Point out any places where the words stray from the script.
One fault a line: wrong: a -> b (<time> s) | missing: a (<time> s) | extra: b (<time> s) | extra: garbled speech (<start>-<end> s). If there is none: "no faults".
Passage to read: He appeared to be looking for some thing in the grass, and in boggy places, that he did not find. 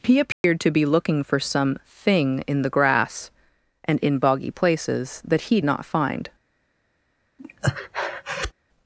missing: did (5.6 s)